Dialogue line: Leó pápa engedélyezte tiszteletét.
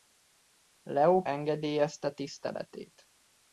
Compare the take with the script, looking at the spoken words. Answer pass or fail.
fail